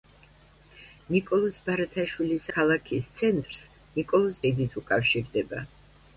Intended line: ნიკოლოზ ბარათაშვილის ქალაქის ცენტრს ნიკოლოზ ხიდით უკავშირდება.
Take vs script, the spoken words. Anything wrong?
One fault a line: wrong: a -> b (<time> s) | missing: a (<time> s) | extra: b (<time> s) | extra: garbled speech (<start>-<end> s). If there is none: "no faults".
no faults